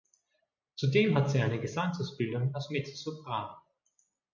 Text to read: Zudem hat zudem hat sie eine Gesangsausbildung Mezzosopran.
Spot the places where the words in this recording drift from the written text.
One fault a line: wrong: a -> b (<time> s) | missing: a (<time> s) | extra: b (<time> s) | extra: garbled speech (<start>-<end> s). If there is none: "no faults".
missing: zudem hat (1.3 s)
extra: als (2.5 s)